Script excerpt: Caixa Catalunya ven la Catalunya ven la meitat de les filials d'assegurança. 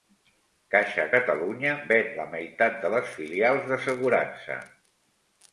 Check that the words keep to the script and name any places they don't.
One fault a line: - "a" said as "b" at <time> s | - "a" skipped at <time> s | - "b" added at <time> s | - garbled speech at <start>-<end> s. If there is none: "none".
- "Catalunya ven la" skipped at 2.3 s